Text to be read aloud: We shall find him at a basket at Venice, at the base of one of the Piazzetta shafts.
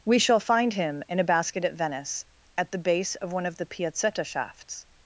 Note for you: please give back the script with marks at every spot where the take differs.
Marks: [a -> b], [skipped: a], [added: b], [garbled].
We shall find him [at -> in] a basket at Venice, at the base of one of the Piazzetta shafts.